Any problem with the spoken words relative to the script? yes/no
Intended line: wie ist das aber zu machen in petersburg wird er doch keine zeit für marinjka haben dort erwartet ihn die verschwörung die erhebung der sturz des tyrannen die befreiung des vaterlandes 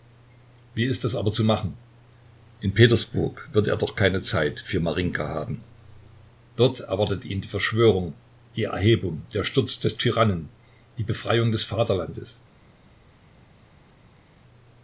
no